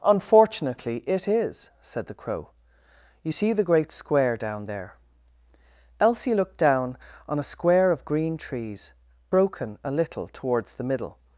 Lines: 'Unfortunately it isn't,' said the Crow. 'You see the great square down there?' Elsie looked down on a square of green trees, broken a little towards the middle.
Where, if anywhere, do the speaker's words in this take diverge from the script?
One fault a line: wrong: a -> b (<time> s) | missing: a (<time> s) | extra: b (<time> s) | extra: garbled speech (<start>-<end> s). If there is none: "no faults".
wrong: isn't -> is (1.3 s)